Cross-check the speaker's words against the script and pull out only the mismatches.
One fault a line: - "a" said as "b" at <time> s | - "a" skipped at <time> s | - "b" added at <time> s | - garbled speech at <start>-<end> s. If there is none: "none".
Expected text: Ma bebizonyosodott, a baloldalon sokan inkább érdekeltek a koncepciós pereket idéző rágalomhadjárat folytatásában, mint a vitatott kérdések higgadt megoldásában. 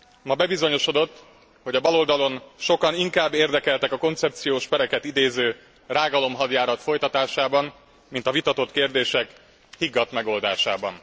- "hogy" added at 1.6 s